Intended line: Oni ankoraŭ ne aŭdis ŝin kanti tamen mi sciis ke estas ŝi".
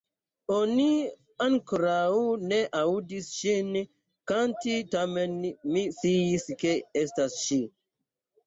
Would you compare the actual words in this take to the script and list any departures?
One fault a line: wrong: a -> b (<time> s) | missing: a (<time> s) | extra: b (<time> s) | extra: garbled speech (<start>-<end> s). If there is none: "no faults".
no faults